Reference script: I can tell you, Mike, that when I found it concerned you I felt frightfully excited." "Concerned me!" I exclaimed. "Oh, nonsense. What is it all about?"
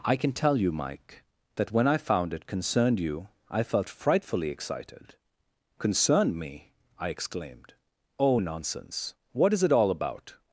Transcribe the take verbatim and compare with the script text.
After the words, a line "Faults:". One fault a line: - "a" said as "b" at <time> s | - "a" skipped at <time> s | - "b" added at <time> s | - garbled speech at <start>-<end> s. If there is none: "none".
I can tell you, Mike, that when I found it concerned you I felt frightfully excited." "Concerned me!" I exclaimed. "Oh, nonsense. What is it all about?"
Faults:
none